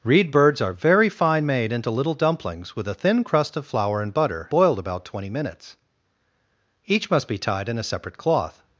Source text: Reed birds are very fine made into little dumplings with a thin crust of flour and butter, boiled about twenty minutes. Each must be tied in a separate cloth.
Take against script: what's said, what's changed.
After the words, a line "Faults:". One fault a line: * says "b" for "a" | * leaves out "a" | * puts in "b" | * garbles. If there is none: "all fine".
Reed birds are very fine made into little dumplings with a thin crust of flour and butter, boiled about twenty minutes. Each must be tied in a separate cloth.
Faults:
all fine